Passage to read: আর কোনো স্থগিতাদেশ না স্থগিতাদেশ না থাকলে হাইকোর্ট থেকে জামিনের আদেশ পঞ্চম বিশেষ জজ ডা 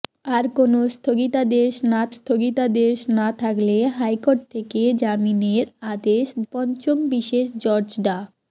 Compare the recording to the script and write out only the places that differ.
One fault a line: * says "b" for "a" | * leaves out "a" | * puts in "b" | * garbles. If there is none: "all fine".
all fine